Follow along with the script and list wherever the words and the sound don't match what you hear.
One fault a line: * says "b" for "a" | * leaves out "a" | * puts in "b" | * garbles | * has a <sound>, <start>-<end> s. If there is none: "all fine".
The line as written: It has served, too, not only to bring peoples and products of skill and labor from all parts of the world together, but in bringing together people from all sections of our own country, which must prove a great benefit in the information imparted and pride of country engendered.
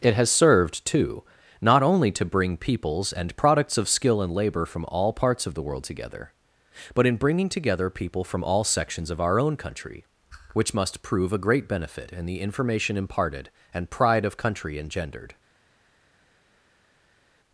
all fine